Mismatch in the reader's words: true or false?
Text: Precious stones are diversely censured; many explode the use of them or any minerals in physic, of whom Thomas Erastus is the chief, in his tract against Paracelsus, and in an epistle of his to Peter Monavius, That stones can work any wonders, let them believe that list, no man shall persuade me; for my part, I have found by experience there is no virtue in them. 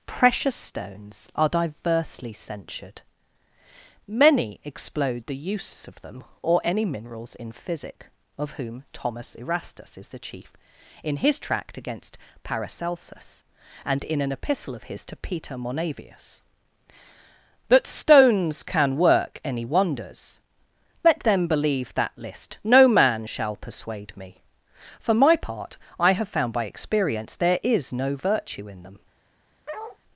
false